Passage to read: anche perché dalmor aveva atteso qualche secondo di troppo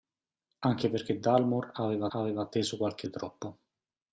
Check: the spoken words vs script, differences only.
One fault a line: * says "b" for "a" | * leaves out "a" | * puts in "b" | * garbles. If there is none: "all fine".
* puts in "aveva"
* leaves out "secondo"